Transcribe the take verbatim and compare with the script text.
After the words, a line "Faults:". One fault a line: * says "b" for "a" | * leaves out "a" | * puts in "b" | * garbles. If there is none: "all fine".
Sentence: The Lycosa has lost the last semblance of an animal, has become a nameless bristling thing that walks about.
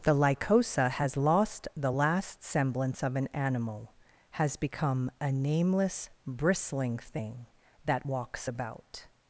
The Lycosa has lost the last semblance of an animal, has become a nameless bristling thing that walks about.
Faults:
all fine